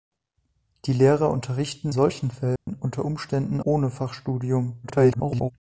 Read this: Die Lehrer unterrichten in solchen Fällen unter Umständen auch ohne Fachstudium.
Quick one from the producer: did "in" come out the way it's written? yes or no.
no